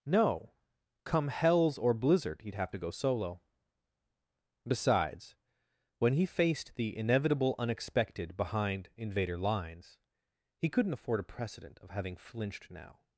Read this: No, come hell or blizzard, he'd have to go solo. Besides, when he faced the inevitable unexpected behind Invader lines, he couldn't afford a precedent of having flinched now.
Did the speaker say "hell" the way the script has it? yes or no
no